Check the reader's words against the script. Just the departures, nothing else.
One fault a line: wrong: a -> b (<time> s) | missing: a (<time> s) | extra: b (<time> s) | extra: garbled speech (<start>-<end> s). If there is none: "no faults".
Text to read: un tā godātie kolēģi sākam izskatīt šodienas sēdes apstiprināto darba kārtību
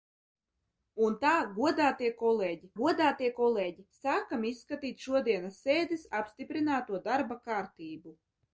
extra: godātie kolēģi (2.8 s)